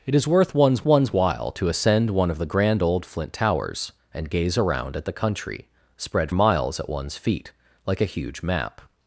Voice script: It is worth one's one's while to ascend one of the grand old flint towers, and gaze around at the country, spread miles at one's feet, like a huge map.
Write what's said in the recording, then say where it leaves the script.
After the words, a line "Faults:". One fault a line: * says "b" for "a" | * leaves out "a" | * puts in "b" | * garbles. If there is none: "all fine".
It is worth one's one's while to ascend one of the grand old flint towers, and gaze around at the country, spread miles at one's feet, like a huge map.
Faults:
all fine